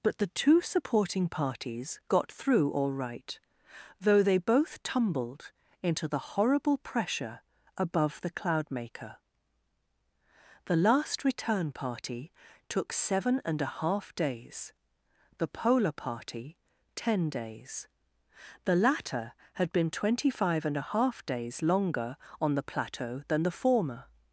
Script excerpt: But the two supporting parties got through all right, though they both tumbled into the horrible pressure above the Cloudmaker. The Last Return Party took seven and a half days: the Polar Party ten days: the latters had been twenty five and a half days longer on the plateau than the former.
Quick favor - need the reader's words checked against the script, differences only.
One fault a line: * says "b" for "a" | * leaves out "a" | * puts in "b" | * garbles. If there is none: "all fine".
* says "latter" for "latters"